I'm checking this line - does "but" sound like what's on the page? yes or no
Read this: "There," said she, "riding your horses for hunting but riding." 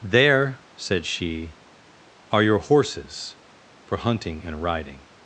no